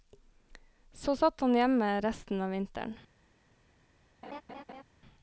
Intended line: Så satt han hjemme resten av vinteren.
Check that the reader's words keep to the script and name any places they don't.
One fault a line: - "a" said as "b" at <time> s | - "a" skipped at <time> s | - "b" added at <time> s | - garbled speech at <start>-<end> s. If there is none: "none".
none